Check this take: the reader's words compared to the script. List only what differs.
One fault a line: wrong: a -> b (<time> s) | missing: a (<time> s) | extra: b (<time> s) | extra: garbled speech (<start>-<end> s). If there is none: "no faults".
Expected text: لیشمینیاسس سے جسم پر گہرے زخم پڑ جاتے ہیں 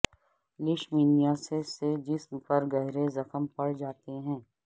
no faults